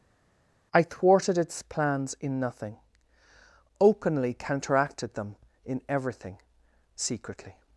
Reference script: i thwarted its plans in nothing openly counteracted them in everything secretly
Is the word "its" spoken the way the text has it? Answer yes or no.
yes